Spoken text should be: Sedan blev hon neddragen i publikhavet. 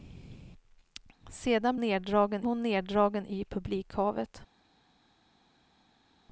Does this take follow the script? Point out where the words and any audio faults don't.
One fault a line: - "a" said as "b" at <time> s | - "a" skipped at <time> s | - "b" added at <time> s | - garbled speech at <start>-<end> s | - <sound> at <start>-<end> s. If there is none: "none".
- "blev" said as "neddragen" at 1.8 s